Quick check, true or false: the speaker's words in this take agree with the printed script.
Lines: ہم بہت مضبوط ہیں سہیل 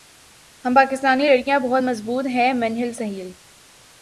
false